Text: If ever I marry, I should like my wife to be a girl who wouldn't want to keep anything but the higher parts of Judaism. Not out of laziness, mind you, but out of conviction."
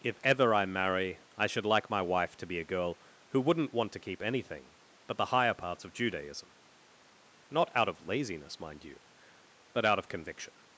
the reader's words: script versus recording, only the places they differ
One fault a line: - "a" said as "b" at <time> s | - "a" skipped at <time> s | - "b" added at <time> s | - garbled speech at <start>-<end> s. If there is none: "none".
none